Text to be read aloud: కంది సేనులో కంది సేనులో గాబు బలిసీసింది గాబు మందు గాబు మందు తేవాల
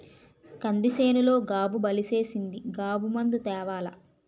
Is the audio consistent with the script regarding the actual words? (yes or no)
no